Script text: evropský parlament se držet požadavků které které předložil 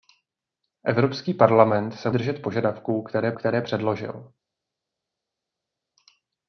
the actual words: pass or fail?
pass